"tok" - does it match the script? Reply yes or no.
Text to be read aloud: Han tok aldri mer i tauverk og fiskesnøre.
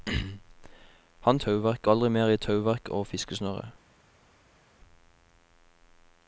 no